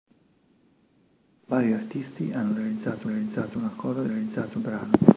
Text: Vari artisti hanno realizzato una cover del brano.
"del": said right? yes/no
no